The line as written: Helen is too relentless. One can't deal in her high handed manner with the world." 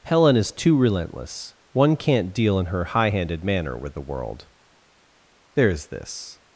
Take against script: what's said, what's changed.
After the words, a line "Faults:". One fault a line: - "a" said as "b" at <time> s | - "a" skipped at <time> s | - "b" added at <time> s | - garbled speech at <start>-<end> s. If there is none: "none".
Helen is too relentless. One can't deal in her high handed manner with the world." "There's this
Faults:
- "There's this" added at 5.5 s